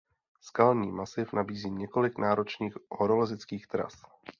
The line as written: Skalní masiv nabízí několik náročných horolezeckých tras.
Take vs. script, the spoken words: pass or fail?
pass